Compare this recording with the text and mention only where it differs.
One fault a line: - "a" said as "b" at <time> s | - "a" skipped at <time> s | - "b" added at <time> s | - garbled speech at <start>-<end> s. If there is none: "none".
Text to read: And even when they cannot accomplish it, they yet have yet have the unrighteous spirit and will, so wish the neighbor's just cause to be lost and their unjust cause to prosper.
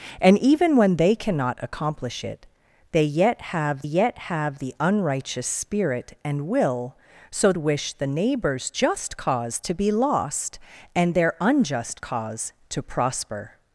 none